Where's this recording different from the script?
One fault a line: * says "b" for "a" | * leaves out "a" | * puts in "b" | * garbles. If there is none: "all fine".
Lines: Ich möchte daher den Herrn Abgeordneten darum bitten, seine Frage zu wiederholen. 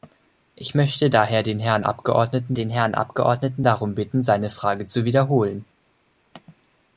* puts in "den Herrn Abgeordneten"